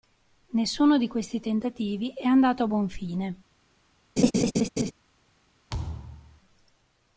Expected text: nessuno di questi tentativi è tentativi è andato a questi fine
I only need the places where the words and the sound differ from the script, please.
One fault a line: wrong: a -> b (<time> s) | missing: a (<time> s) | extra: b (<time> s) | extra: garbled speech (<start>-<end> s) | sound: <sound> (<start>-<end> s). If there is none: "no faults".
missing: tentativi è (2.2 s)
wrong: questi -> buon (2.6 s)
sound: laugh (4.2-4.9 s)
sound: thud (5.7-6.4 s)